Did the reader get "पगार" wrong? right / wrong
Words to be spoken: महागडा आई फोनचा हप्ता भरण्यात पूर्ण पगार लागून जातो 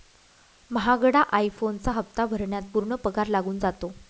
right